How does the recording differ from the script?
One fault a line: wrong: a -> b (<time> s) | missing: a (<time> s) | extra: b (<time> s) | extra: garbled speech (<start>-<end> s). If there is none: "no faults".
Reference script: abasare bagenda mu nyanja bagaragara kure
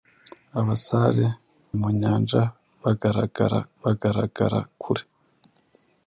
missing: bagenda (1.2 s)
extra: bagaragara (3.8 s)